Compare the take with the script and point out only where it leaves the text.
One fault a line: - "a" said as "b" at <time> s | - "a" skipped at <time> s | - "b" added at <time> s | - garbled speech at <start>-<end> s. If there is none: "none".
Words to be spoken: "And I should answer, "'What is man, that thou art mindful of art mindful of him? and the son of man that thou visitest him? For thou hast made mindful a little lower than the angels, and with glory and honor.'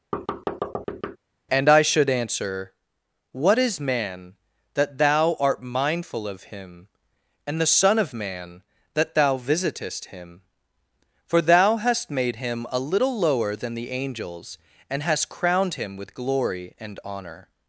- "art mindful of" skipped at 6.4 s
- "mindful" said as "him" at 12.4 s
- "hast crowned him" added at 15.0 s